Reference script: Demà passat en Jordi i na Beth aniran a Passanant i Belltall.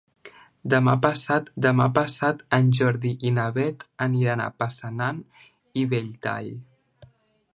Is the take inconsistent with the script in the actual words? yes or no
yes